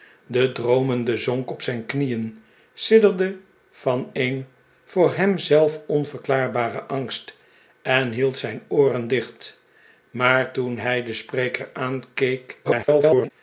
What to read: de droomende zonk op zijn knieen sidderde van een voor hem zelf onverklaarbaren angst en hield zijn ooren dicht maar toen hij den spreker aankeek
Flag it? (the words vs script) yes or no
yes